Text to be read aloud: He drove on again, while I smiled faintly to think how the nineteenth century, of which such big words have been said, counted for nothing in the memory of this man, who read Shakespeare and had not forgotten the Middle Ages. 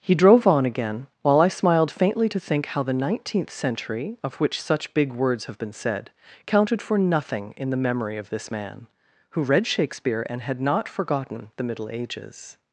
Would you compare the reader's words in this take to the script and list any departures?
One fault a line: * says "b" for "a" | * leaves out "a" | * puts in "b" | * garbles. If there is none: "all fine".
all fine